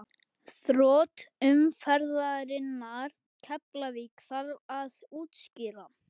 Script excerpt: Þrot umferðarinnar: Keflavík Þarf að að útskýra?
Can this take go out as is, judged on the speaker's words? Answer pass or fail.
fail